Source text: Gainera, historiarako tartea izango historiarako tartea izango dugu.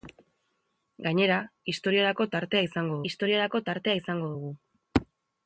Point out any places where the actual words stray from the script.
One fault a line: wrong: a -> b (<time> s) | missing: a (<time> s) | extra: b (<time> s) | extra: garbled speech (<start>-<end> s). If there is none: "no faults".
no faults